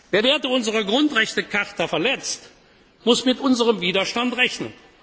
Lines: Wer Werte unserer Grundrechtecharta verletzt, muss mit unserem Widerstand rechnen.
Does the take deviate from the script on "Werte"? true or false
false